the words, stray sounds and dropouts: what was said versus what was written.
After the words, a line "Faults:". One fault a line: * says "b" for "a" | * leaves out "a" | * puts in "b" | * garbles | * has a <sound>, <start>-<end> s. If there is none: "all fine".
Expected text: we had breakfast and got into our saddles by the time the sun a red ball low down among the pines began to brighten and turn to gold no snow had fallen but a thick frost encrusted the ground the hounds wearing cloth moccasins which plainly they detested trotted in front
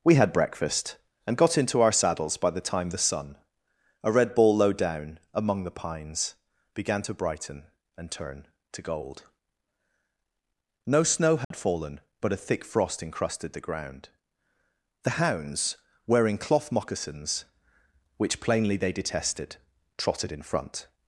we had breakfast and got into our saddles by the time the sun a red ball low down among the pines began to brighten and turn to gold no snow had fallen but a thick frost encrusted the ground the hounds wearing cloth moccasins which plainly they detested trotted in front
Faults:
* has a dropout, 11.4-11.5 s